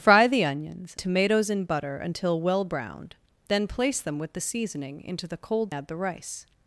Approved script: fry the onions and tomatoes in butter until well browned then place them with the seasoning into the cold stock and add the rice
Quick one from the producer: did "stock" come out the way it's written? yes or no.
no